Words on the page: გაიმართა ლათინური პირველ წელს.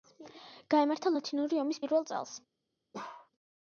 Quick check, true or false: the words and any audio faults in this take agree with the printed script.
false